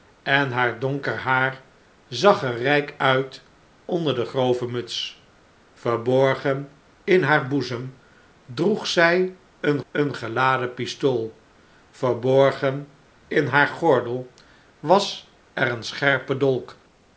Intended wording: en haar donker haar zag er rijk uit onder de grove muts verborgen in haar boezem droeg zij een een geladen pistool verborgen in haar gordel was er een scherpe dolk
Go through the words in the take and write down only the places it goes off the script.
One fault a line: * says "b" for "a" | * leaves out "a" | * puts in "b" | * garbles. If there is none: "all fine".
all fine